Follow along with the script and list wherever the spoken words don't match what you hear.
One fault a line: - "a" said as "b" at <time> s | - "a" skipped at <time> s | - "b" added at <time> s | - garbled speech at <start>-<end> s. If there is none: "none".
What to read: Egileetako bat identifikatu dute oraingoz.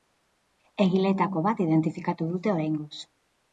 none